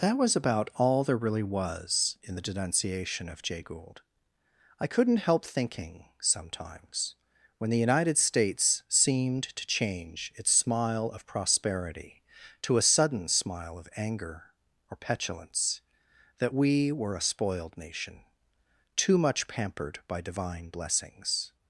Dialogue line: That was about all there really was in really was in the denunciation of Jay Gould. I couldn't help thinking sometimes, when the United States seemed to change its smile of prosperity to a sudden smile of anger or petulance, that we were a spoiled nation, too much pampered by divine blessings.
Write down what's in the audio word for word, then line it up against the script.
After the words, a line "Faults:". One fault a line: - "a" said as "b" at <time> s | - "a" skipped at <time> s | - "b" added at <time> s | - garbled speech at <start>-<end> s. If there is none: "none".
That was about all there really was in the denunciation of Jay Gould. I couldn't help thinking sometimes, when the United States seemed to change its smile of prosperity to a sudden smile of anger or petulance, that we were a spoiled nation, too much pampered by divine blessings.
Faults:
- "really was in" skipped at 2.4 s